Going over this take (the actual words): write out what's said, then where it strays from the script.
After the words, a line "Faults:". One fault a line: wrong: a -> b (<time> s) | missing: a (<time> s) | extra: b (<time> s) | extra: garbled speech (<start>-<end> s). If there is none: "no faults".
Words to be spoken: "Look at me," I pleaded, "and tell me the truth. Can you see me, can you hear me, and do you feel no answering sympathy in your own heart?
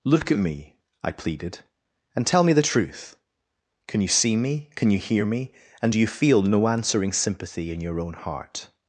"Look at me," I pleaded, "and tell me the truth. Can you see me, can you hear me, and do you feel no answering sympathy in your own heart?
Faults:
no faults